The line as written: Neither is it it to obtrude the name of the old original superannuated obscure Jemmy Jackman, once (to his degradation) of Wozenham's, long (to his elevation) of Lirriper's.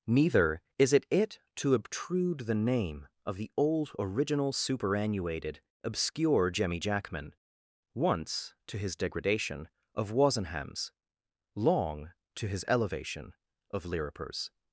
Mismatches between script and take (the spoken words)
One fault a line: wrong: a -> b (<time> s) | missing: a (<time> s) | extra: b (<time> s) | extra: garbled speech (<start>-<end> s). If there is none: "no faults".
no faults